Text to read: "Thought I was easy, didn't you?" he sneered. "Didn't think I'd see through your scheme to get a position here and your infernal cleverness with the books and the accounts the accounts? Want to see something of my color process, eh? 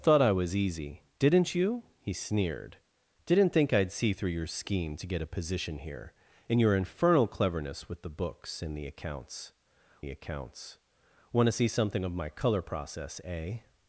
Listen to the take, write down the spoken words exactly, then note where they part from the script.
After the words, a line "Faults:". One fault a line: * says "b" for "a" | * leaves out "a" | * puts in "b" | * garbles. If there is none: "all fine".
"Thought I was easy, didn't you?" he sneered. "Didn't think I'd see through your scheme to get a position here and your infernal cleverness with the books and the accounts the accounts? Want to see something of my color process, eh?
Faults:
all fine